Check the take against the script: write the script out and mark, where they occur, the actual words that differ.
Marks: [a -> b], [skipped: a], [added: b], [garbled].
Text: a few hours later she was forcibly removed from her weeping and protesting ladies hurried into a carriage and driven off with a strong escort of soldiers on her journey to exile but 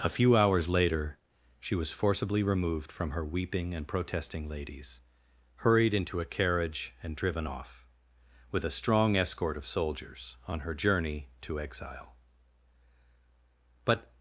a few hours later she was forcibly removed from her weeping and protesting ladies hurried into a carriage and driven off with a strong escort of soldiers on her journey to exile but